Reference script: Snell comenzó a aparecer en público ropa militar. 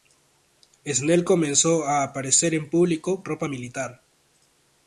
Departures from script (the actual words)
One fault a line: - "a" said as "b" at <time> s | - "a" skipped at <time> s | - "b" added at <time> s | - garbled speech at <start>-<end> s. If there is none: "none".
none